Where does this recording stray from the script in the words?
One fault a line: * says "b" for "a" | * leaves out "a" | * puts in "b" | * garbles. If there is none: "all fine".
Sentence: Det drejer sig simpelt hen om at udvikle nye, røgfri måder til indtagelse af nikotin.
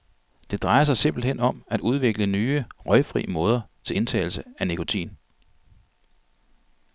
all fine